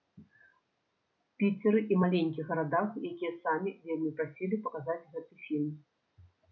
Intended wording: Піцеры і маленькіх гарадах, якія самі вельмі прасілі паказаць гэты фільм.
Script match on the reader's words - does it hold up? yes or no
yes